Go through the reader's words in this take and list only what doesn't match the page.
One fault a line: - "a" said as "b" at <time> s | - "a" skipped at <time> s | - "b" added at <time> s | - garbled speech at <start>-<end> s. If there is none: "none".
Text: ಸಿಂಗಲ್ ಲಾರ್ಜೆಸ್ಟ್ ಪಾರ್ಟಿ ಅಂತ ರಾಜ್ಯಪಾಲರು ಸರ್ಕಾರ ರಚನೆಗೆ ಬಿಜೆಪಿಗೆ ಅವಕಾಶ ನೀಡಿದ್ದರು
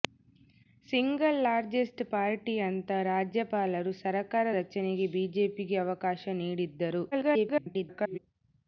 - garbled speech at 7.1-8.2 s